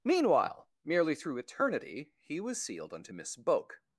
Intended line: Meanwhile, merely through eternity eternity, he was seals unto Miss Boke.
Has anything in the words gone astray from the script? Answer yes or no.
yes